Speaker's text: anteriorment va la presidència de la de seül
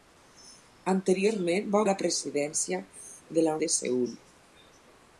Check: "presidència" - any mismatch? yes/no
no